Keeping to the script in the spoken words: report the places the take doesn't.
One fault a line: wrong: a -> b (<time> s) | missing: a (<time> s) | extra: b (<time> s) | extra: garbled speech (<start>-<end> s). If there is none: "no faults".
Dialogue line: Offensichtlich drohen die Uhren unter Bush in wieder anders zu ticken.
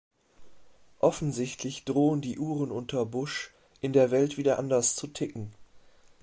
extra: der Welt (3.9 s)